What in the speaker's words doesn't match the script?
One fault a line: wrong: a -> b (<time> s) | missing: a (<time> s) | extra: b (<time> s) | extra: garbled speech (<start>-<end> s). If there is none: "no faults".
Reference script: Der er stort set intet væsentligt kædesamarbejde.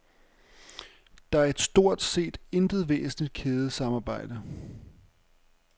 no faults